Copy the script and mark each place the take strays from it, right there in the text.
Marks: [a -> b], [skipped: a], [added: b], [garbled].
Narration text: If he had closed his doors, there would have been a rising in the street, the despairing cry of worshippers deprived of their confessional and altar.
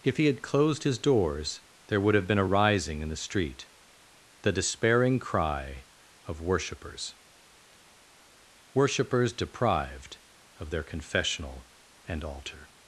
If he had closed his doors, there would have been a rising in the street, the despairing cry of worshippers [added: worshippers] deprived of their confessional and altar.